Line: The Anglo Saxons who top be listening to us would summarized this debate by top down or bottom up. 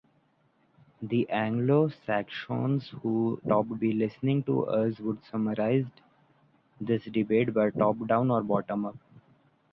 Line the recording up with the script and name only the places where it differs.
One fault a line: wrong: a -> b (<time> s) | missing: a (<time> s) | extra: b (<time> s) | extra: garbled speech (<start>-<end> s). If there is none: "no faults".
no faults